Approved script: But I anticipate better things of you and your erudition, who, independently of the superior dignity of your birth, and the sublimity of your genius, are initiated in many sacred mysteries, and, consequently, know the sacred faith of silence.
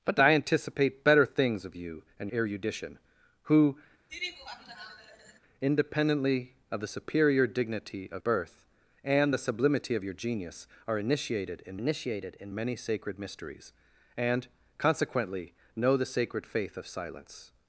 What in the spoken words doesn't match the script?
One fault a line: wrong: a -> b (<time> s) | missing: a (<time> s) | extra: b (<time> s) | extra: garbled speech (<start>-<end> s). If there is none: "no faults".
missing: your (2.3 s)
missing: your (8.2 s)
extra: initiated in (11.8 s)